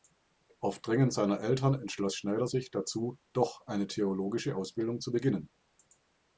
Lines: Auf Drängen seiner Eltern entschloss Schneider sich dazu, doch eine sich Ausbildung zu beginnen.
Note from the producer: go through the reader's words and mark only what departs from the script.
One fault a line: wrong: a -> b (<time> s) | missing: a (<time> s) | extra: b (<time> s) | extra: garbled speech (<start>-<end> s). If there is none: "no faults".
wrong: sich -> theologische (3.9 s)